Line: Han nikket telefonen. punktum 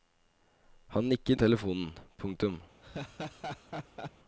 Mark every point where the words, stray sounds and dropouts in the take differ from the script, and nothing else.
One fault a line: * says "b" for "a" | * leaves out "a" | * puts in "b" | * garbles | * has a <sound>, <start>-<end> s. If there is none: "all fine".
* has a laugh, 2.8-4.1 s